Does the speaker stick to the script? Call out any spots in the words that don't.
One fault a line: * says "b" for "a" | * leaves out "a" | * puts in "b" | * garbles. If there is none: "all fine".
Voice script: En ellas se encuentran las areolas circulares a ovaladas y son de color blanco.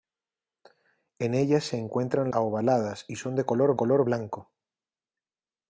* leaves out "las areolas circulares"
* puts in "color"